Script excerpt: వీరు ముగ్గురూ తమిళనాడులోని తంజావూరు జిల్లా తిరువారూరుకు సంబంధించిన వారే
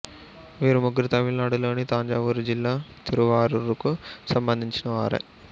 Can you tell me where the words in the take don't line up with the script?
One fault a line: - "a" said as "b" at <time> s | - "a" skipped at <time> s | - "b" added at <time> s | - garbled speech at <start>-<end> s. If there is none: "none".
none